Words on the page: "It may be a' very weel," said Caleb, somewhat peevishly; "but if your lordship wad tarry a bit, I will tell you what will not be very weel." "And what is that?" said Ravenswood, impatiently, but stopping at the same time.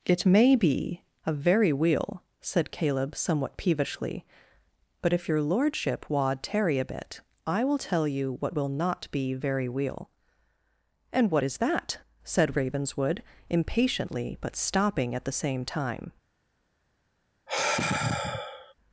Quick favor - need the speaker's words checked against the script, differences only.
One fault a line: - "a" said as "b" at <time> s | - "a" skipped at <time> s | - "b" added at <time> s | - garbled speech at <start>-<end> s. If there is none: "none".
none